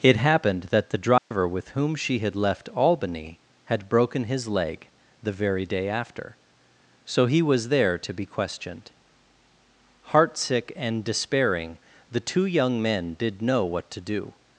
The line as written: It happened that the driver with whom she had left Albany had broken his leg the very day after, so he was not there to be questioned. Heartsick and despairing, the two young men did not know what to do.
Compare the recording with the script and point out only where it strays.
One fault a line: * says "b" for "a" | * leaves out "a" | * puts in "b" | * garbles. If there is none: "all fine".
* leaves out "not"
* leaves out "not"